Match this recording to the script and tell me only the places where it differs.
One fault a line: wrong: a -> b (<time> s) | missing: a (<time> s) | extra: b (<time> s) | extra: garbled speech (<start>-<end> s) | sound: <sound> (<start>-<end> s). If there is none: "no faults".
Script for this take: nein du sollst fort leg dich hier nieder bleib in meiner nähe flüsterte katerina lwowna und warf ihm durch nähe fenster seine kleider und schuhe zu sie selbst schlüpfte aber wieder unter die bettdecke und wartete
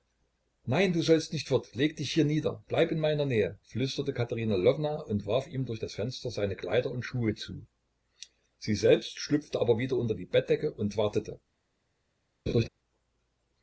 extra: nicht (1.3 s)
wrong: nähe -> das (5.8 s)
sound: laugh (12.5-12.7 s)